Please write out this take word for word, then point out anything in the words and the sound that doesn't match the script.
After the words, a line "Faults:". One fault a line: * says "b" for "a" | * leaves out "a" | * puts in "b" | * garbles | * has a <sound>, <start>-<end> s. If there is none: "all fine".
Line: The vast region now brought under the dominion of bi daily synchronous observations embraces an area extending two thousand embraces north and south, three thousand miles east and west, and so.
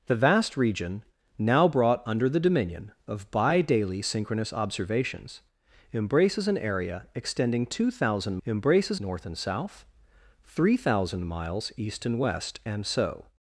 The vast region now brought under the dominion of bi daily synchronous observations embraces an area extending two thousand embraces north and south, three thousand miles east and west, and so.
Faults:
all fine